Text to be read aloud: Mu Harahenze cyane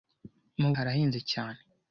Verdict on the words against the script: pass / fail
pass